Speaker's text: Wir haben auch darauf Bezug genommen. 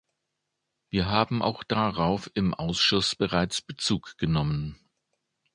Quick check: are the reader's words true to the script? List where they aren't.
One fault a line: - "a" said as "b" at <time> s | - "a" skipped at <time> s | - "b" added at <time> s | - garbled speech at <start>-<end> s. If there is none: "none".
- "im Ausschuss bereits" added at 2.3 s